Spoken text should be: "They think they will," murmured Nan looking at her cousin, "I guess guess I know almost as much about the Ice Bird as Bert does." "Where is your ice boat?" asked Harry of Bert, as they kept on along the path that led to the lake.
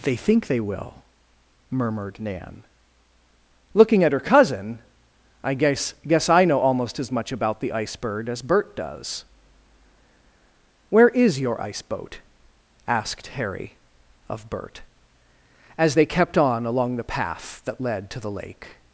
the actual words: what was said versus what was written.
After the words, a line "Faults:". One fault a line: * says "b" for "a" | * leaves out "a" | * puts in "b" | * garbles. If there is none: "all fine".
"They think they will," murmured Nan looking at her cousin, "I guess guess I know almost as much about the Ice Bird as Bert does." "Where is your ice boat?" asked Harry of Bert, as they kept on along the path that led to the lake.
Faults:
all fine